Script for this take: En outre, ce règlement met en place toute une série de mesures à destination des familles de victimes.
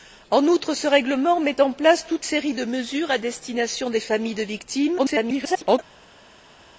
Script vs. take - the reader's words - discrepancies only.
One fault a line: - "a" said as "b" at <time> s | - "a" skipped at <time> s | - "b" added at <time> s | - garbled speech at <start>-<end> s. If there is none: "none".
- "une" skipped at 2.3 s
- garbled speech at 5.0-5.8 s